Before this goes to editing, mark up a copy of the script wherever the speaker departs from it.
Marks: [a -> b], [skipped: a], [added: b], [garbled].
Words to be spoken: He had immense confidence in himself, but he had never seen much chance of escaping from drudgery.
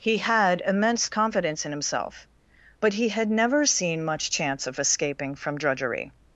He had immense confidence in himself, but he had never seen much chance of escaping from drudgery.